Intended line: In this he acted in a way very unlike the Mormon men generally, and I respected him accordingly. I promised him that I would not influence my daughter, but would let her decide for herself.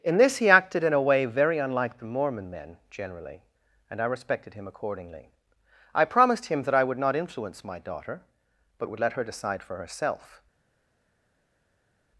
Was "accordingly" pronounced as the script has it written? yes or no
yes